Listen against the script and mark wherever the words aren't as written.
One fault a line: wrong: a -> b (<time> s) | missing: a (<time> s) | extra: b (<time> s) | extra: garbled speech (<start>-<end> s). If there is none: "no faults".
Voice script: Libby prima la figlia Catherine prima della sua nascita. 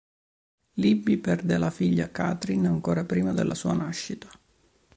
wrong: prima -> perde (1.2 s)
extra: ancora (2.7 s)